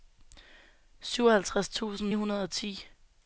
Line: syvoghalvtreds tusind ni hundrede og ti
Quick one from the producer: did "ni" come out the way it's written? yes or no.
no